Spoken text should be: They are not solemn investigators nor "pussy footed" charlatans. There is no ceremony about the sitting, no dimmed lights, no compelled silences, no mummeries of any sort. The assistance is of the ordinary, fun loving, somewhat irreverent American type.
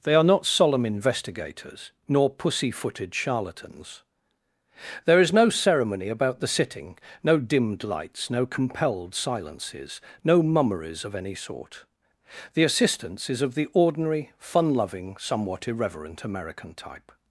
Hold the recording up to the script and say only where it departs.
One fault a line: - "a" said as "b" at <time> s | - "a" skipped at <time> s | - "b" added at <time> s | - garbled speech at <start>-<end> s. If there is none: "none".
none